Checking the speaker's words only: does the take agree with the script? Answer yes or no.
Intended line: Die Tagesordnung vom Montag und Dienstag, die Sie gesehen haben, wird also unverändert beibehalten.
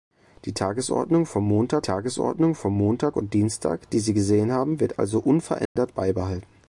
no